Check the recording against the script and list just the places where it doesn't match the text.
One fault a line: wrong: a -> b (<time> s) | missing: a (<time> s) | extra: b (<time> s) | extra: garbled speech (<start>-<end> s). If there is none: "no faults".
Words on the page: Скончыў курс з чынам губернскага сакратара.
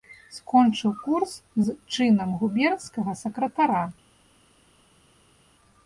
no faults